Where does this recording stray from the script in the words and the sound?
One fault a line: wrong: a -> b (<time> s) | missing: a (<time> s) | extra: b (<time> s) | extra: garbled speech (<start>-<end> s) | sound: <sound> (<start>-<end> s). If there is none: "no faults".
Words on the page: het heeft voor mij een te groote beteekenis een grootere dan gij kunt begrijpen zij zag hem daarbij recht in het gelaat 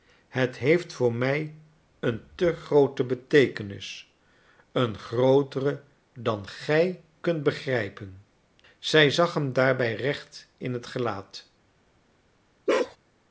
sound: bark (12.7-13.0 s)